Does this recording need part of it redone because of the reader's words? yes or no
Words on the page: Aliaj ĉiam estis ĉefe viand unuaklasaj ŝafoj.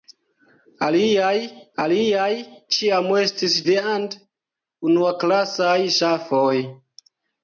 yes